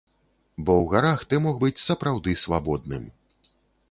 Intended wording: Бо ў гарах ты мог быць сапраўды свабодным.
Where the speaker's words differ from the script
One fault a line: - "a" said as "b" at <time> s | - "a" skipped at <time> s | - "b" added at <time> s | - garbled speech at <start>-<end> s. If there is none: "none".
none